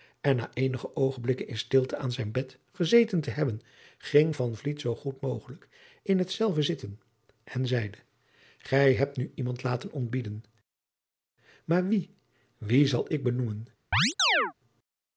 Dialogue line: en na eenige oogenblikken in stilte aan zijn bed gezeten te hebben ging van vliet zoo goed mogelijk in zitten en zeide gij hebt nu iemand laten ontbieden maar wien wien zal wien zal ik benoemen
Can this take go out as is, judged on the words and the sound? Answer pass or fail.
fail